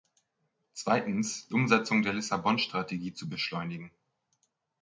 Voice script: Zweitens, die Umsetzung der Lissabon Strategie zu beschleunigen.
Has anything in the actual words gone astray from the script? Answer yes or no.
yes